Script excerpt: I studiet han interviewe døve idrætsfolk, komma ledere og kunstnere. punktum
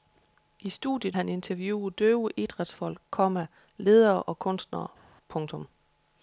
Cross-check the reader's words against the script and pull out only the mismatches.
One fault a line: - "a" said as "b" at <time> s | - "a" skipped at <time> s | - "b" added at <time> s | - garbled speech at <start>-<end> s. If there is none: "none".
none